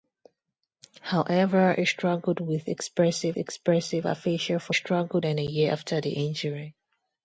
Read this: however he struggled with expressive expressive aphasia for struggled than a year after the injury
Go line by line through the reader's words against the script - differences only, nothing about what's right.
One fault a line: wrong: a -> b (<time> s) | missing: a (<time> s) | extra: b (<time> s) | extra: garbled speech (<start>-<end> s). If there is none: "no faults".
no faults